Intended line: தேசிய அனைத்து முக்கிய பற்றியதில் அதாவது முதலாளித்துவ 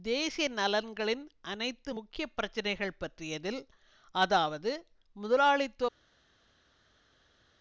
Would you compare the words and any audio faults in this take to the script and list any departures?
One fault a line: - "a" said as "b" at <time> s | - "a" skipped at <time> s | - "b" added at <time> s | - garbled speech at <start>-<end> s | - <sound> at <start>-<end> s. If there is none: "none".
- "நலன்களின்" added at 0.5 s
- "பிரச்சினைகள்" added at 2.3 s